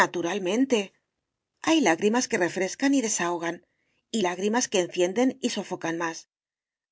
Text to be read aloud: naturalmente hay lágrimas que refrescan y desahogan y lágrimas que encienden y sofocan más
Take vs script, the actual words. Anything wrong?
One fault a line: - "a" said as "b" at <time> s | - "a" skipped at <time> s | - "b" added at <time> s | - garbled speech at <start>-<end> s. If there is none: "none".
none